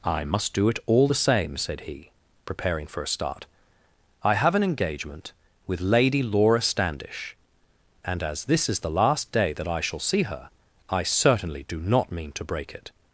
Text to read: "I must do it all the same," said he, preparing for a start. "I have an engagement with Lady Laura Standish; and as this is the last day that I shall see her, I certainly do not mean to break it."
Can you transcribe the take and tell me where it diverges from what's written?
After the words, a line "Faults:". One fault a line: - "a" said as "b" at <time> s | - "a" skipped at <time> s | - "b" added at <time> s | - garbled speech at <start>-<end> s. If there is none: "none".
"I must do it all the same," said he, preparing for a start. "I have an engagement with Lady Laura Standish; and as this is the last day that I shall see her, I certainly do not mean to break it."
Faults:
none